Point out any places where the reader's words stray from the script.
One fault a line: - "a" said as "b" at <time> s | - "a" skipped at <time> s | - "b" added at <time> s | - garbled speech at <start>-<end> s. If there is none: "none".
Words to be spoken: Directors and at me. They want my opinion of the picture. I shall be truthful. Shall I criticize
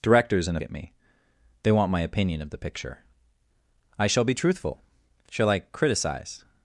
none